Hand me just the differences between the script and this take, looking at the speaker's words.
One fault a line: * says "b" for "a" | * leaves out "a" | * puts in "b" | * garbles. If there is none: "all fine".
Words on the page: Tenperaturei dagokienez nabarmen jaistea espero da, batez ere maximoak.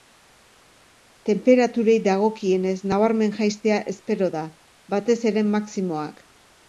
all fine